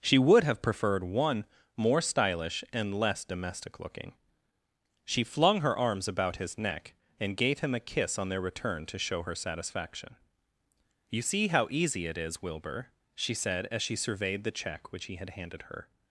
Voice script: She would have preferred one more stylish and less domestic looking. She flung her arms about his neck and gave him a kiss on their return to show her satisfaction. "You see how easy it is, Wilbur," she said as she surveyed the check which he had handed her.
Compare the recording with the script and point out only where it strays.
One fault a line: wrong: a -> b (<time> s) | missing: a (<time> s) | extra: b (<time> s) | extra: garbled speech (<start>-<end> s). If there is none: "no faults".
no faults